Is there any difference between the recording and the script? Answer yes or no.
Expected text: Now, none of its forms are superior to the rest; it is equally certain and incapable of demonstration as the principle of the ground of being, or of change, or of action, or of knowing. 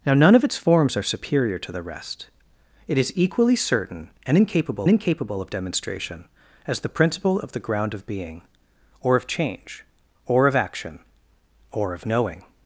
yes